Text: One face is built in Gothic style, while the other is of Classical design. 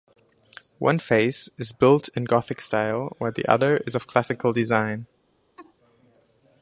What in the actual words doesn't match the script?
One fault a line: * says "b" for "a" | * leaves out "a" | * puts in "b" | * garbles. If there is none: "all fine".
all fine